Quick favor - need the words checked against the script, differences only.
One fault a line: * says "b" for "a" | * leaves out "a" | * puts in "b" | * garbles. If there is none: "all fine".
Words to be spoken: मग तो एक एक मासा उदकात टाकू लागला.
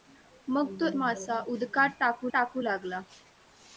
* leaves out "एक एक"
* puts in "टाकू"